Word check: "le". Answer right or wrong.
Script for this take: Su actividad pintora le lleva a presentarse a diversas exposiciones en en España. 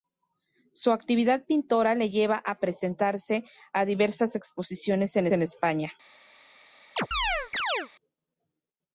right